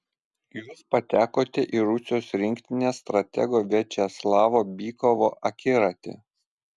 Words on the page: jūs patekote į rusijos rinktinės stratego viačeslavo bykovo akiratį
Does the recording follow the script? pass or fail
pass